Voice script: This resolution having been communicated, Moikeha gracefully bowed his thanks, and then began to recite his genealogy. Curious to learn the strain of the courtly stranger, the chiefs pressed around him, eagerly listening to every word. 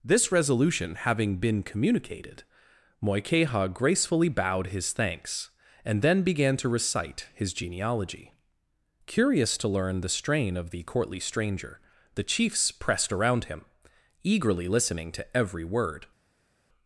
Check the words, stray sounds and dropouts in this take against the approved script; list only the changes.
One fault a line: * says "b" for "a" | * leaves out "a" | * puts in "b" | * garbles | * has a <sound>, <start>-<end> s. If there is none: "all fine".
all fine